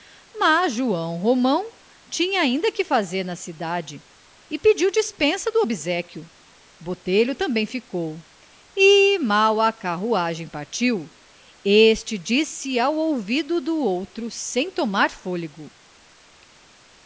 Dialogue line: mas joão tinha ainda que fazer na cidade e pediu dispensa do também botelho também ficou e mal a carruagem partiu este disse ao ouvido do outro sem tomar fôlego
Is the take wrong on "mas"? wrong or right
right